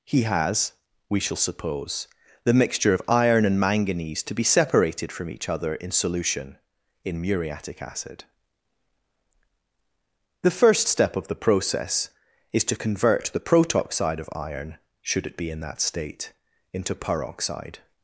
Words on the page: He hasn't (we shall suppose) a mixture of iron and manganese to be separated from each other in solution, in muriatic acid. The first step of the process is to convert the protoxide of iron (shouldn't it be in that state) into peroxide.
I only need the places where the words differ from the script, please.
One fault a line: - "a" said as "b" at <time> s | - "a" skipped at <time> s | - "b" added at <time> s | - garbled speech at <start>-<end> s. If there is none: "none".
- "hasn't" said as "has" at 0.2 s
- "a" said as "the" at 2.4 s
- "shouldn't" said as "should" at 15.0 s